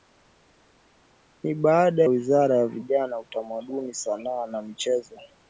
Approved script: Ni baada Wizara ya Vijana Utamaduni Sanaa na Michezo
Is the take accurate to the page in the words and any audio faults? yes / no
yes